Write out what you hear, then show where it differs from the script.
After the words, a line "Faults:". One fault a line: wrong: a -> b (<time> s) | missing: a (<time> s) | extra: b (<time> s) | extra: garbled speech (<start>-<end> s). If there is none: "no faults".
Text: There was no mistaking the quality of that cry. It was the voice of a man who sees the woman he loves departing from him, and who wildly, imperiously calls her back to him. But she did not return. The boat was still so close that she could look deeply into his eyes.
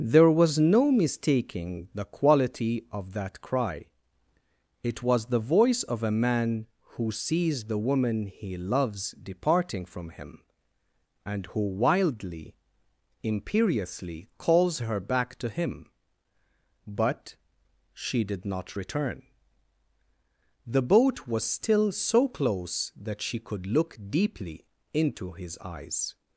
There was no mistaking the quality of that cry. It was the voice of a man who sees the woman he loves departing from him, and who wildly, imperiously calls her back to him. But she did not return. The boat was still so close that she could look deeply into his eyes.
Faults:
no faults